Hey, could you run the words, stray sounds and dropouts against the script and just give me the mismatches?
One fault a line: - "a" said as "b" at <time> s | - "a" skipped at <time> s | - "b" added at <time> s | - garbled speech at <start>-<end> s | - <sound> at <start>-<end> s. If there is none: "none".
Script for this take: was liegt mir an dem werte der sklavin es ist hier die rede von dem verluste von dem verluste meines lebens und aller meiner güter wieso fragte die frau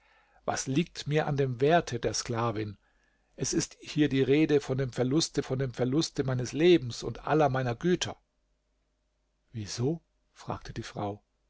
none